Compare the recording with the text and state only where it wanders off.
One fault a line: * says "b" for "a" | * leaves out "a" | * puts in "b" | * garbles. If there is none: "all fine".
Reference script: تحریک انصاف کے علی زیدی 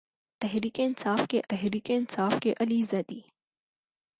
* puts in "تحریک انصاف کے"